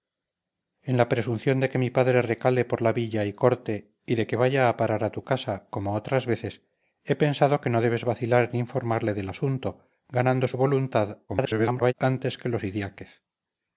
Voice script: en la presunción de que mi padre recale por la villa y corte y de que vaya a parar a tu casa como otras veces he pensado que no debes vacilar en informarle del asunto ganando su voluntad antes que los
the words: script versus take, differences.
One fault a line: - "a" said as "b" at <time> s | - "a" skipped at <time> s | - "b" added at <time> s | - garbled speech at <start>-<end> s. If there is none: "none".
- garbled speech at 11.3-11.9 s